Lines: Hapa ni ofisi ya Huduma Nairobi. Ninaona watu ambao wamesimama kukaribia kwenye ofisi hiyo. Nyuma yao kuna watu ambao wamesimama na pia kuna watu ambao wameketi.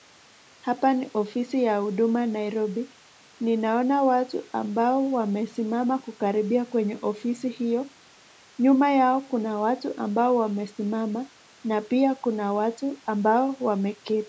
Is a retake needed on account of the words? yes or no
no